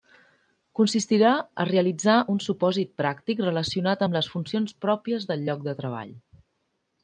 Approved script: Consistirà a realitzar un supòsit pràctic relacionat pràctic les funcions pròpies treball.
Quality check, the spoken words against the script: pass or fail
fail